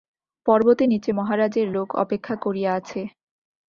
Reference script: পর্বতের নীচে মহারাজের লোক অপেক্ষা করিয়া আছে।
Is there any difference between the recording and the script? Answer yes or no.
no